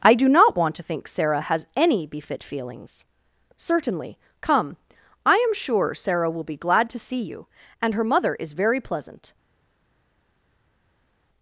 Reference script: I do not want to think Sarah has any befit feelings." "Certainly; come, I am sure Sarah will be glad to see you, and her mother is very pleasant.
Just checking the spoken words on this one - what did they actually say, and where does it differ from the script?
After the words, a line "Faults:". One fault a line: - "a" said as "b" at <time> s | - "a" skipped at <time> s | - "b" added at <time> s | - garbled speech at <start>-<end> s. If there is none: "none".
I do not want to think Sarah has any befit feelings." "Certainly; come, I am sure Sarah will be glad to see you, and her mother is very pleasant.
Faults:
none